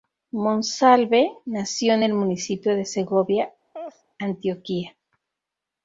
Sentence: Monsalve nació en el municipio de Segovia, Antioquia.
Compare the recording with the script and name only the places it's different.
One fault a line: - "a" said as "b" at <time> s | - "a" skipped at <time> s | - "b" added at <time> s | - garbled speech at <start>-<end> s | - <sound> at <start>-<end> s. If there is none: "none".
- laugh at 3.7-4.0 s